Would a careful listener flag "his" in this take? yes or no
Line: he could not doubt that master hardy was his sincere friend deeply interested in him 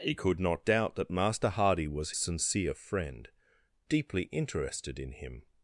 yes